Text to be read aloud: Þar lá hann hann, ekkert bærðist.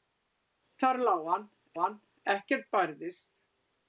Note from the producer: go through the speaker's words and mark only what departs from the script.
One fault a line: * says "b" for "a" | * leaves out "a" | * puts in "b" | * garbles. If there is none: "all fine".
all fine